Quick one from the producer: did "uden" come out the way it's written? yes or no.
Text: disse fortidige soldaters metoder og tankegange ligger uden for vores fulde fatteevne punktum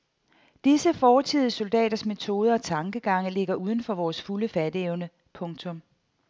yes